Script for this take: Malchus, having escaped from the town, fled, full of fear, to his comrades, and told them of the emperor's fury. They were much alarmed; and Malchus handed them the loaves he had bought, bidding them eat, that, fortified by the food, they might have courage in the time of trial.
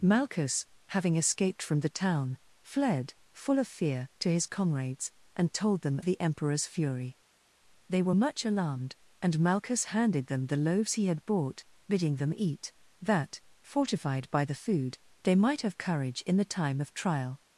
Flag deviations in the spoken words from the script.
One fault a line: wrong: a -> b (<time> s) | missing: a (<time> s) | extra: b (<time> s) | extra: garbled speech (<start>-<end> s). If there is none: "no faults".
missing: of (6.0 s)